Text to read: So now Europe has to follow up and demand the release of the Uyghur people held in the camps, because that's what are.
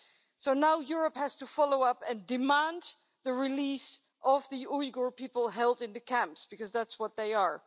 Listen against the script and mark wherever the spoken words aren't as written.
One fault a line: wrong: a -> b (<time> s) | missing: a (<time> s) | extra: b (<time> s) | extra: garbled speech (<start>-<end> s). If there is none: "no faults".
extra: they (7.2 s)